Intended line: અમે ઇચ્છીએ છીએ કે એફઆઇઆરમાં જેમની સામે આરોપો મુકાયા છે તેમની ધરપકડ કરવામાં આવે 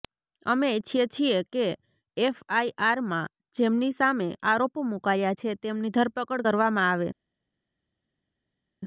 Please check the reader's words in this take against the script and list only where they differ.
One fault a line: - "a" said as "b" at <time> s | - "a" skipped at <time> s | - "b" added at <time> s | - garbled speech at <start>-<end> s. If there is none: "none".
none